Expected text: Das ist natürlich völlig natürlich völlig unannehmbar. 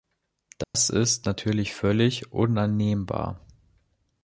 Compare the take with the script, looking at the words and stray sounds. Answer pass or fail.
fail